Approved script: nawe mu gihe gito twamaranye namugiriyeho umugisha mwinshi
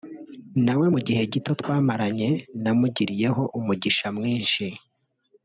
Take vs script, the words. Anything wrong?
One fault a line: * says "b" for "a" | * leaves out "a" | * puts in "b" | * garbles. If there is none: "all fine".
all fine